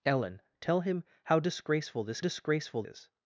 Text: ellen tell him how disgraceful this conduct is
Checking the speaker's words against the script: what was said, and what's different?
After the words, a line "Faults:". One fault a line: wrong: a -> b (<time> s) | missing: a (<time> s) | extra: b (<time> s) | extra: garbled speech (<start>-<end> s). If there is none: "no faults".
ellen tell him how disgraceful this disgraceful is
Faults:
wrong: conduct -> disgraceful (2.2 s)